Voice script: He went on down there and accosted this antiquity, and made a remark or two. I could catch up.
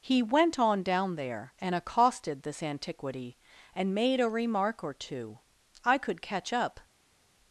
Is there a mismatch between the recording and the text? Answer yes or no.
no